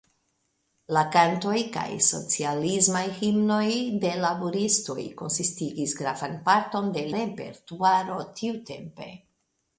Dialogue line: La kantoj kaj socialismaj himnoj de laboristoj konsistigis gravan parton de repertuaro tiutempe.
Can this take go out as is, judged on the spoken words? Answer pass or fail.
pass